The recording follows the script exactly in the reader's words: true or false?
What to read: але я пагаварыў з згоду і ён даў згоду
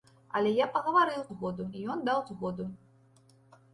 true